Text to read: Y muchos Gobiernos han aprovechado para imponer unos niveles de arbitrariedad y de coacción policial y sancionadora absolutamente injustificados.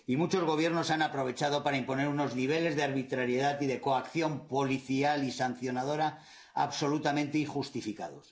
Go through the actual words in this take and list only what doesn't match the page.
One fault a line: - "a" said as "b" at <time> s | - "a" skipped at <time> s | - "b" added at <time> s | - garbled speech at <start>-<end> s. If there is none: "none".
none